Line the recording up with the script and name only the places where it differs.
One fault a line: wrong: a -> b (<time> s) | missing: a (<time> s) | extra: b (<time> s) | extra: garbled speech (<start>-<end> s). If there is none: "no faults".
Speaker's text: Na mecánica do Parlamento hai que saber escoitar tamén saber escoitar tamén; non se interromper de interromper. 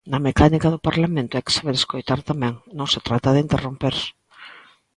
missing: saber escoitar tamén (2.5 s)
wrong: interromper -> trata (3.1 s)